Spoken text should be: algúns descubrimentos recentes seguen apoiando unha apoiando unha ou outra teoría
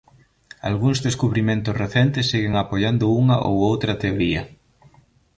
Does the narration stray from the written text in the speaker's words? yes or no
yes